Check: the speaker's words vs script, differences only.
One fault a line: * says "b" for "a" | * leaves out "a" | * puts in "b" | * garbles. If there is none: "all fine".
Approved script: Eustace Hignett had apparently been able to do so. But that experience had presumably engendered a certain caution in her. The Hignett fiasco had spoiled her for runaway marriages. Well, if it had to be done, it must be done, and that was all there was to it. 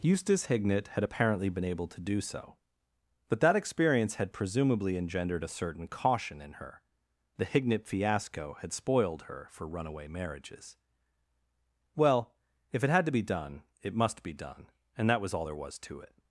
all fine